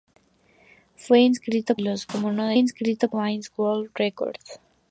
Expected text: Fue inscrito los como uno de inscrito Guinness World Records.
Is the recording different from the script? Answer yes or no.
no